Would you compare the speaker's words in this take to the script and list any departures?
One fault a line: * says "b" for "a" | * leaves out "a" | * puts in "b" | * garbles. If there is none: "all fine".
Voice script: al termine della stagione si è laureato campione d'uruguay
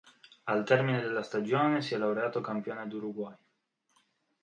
all fine